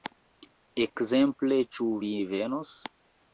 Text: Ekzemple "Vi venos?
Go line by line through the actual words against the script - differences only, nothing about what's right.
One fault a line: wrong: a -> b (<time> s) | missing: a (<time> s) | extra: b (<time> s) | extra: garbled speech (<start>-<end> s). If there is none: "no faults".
extra: Ĉu (1.8 s)